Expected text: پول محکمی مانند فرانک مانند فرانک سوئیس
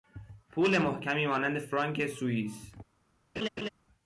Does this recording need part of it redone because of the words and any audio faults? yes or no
yes